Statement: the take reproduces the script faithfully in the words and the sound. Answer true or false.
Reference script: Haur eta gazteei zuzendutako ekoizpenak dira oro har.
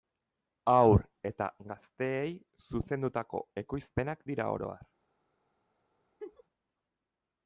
false